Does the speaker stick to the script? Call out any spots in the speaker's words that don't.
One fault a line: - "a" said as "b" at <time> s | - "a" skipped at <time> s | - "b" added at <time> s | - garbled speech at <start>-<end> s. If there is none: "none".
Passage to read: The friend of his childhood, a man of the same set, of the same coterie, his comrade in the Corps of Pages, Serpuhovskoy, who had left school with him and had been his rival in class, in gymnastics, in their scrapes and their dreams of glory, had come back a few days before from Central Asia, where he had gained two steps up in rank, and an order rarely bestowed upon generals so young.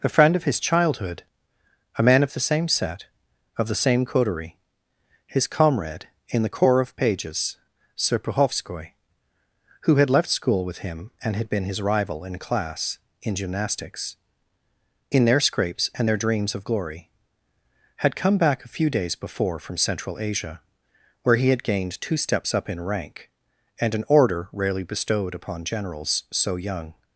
- "The" said as "A" at 0.0 s